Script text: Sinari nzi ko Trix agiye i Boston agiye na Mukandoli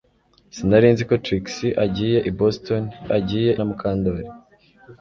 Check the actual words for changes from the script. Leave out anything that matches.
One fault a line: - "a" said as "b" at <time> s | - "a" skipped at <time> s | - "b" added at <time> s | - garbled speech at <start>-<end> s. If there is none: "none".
none